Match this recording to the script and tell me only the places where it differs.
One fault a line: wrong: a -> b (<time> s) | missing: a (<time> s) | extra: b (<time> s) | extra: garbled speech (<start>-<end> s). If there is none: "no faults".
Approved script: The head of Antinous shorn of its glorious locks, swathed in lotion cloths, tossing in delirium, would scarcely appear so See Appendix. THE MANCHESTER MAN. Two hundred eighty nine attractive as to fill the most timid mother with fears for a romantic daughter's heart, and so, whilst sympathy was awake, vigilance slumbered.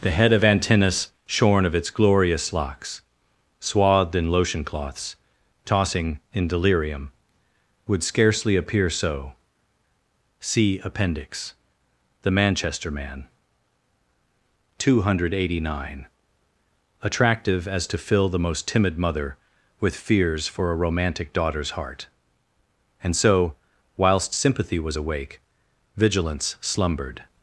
no faults